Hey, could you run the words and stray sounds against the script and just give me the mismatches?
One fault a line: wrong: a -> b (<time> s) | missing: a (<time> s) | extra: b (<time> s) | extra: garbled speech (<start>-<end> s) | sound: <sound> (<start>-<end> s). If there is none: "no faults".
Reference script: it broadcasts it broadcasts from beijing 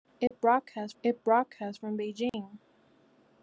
sound: dropout (0.3-0.3 s)
sound: dropout (2.3-2.3 s)